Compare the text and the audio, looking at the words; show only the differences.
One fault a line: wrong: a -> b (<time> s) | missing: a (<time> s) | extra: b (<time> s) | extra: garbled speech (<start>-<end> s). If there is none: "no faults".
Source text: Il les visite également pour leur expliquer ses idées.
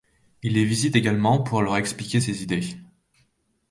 no faults